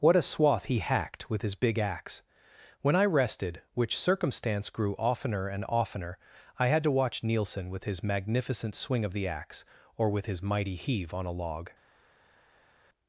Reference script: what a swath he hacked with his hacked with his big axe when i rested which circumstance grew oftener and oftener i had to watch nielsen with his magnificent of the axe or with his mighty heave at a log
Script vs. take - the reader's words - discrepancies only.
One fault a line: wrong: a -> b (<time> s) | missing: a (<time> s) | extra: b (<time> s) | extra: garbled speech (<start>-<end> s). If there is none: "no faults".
missing: hacked with his (1.5 s)
extra: swing (8.7 s)
wrong: at -> on (11.1 s)